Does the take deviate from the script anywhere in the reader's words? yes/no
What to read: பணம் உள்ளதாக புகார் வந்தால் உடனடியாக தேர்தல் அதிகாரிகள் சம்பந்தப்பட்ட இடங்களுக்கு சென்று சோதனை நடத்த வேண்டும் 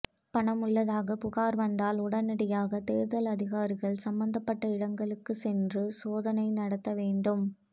no